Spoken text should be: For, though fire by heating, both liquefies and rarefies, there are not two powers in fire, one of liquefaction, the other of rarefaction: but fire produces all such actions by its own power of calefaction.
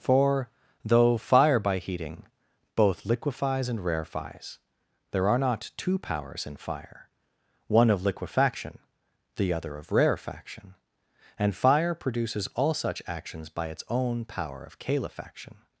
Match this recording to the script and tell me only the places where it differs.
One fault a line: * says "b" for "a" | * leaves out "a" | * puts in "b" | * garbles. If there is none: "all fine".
* says "and" for "but"